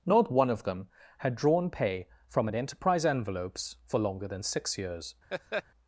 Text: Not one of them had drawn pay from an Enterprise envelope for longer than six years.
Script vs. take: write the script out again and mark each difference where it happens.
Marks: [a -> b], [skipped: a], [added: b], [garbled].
Not one of them had drawn pay from an Enterprise [envelope -> envelopes] for longer than six years.